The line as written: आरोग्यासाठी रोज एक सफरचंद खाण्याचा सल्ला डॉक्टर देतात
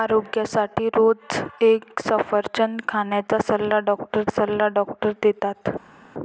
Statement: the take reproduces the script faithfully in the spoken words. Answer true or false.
false